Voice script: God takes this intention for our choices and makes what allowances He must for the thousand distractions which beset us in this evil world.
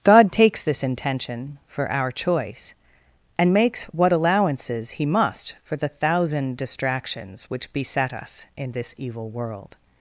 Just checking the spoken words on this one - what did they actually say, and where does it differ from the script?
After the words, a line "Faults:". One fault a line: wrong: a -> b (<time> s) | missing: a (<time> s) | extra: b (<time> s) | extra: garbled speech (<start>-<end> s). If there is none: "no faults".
God takes this intention for our choice and makes what allowances He must for the thousand distractions which beset us in this evil world.
Faults:
wrong: choices -> choice (2.1 s)